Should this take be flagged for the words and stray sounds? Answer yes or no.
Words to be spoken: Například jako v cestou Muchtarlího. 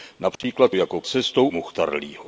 yes